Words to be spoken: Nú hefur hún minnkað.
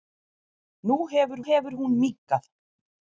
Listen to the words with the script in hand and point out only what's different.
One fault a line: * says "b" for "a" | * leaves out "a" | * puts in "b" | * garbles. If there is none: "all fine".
* puts in "hefur"